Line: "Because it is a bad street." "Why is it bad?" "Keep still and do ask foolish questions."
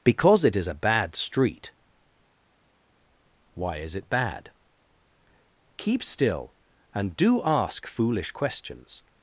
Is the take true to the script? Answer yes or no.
yes